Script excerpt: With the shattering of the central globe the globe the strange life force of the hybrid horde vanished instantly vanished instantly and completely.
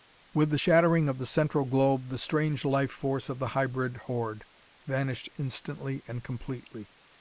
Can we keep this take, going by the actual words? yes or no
no